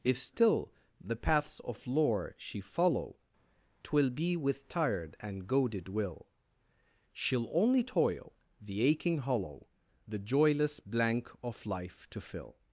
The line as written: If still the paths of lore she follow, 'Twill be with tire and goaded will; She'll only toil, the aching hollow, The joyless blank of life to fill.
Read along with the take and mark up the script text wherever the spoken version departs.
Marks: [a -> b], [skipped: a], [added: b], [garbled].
If still the paths of lore she follow, 'Twill be with [tire -> tired] and goaded will; She'll only toil, the aching hollow, The joyless blank of life to fill.